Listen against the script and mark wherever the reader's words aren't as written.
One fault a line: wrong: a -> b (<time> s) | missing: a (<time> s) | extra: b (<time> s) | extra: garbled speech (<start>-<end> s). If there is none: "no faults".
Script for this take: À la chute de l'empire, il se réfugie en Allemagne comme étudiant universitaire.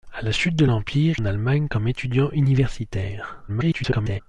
missing: il se réfugie (1.2 s)
extra: garbled speech (3.5-4.2 s)